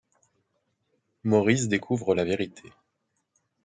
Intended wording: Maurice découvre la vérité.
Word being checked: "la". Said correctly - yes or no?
yes